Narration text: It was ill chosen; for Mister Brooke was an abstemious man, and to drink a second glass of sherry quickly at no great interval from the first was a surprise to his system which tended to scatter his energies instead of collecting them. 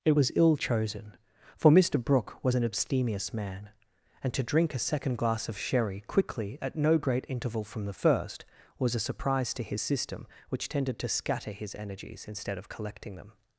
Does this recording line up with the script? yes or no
yes